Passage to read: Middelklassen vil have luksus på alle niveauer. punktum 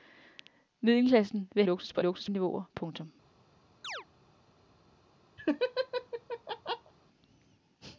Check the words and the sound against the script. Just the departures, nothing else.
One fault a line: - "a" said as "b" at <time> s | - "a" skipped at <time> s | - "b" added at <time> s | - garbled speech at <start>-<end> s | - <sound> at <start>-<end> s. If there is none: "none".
- "have" skipped at 1.6 s
- "alle" said as "luksus" at 2.0 s
- chirp at 3.8-4.1 s
- laugh at 5.4-6.9 s